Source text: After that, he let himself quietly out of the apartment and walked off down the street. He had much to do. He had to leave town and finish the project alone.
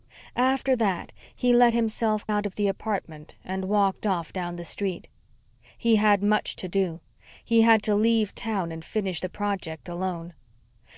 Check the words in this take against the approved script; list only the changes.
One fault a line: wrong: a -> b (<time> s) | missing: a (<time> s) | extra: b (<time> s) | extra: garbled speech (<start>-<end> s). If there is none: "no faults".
missing: quietly (2.2 s)